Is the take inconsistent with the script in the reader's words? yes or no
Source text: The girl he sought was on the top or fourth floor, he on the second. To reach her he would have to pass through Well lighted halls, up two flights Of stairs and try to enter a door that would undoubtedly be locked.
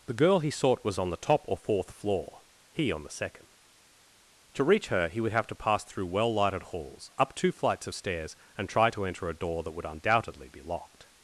no